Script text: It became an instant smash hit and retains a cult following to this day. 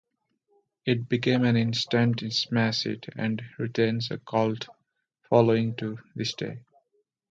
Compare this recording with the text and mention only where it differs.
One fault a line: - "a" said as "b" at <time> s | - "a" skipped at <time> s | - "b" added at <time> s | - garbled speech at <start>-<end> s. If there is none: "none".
none